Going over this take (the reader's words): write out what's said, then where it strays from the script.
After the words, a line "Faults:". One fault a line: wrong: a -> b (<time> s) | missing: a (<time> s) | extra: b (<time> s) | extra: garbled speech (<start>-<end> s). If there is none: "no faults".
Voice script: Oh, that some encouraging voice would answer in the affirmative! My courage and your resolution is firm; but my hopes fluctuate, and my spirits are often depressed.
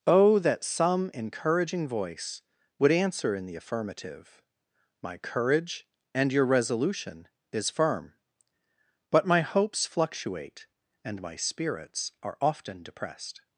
Oh, that some encouraging voice would answer in the affirmative! My courage and your resolution is firm; but my hopes fluctuate, and my spirits are often depressed.
Faults:
no faults